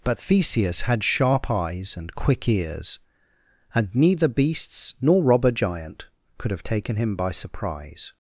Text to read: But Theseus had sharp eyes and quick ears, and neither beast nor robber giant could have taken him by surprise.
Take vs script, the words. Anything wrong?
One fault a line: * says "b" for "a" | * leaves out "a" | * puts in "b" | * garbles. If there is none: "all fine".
* says "beasts" for "beast"